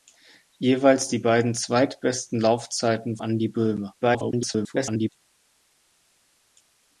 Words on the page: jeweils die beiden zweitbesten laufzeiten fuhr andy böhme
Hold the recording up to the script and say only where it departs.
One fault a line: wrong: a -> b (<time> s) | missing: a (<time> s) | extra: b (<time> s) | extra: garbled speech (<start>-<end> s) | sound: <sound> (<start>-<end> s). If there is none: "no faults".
missing: fuhr (3.2 s)
extra: garbled speech (4.0-5.1 s)